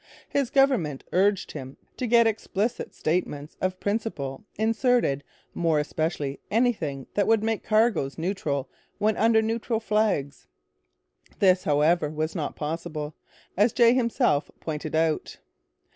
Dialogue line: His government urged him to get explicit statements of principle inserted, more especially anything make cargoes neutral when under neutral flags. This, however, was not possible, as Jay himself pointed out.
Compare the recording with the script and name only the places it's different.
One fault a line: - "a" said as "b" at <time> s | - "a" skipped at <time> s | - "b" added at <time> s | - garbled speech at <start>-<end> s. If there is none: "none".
- "that would" added at 7.1 s